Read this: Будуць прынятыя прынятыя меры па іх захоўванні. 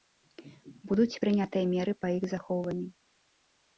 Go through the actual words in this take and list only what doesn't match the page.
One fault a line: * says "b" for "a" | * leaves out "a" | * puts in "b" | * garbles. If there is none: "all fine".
* leaves out "прынятыя"